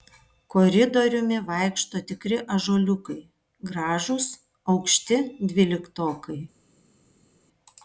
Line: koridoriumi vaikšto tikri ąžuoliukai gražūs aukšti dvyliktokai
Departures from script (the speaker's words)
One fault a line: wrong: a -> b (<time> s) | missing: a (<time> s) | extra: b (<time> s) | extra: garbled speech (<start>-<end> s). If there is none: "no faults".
no faults